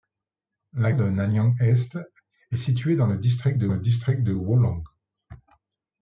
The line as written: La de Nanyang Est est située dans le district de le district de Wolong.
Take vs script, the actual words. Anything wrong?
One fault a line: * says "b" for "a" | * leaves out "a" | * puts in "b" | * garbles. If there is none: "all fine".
all fine